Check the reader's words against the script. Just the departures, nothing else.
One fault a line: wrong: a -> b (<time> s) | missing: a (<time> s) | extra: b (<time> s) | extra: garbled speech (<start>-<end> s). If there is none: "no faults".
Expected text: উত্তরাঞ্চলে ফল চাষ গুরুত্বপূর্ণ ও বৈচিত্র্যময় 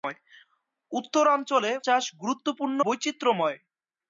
missing: ফল (1.7 s)
missing: ও (2.8 s)